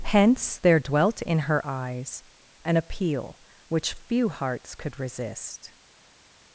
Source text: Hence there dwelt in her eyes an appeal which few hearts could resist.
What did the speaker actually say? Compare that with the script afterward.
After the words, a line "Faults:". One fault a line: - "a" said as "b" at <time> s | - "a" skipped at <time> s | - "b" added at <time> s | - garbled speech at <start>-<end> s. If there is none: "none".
Hence there dwelt in her eyes an appeal which few hearts could resist.
Faults:
none